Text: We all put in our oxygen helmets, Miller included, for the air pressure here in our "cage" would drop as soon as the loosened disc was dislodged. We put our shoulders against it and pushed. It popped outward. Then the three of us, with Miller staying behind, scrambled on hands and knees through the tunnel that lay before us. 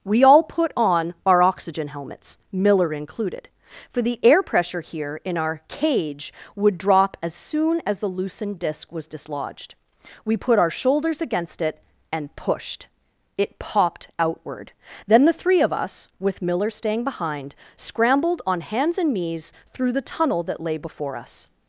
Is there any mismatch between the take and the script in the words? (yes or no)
yes